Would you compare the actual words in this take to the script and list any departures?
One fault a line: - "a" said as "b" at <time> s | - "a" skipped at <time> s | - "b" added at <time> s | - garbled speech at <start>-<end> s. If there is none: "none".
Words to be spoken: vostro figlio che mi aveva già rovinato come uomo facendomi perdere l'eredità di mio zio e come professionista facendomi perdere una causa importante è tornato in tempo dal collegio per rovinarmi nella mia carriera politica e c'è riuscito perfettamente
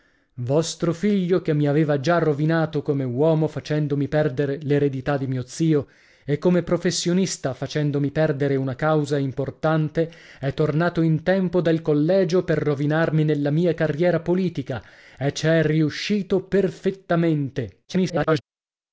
- garbled speech at 17.9-18.4 s